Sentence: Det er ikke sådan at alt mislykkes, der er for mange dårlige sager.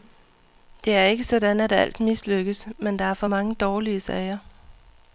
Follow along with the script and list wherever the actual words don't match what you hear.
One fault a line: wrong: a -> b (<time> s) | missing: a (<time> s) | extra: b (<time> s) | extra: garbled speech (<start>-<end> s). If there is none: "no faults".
extra: men (2.8 s)